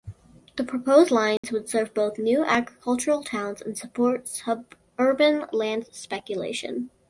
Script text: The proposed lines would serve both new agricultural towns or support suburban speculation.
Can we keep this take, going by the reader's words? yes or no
no